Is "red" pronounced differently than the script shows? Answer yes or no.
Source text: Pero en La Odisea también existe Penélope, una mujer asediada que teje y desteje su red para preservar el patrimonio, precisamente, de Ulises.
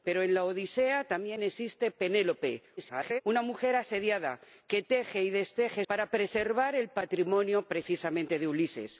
yes